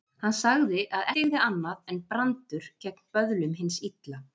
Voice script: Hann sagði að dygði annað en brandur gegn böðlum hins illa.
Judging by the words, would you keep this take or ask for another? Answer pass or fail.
pass